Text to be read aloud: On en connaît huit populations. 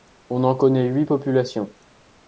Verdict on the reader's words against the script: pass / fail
pass